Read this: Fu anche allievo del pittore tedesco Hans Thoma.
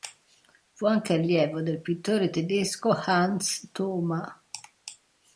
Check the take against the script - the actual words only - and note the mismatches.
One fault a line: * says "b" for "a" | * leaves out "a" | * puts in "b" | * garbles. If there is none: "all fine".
all fine